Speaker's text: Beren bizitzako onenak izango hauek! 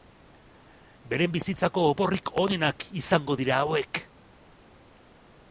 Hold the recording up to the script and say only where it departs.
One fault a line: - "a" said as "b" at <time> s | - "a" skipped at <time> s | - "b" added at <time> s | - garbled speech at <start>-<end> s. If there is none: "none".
- "oporrik" added at 1.9 s
- "dira" added at 3.4 s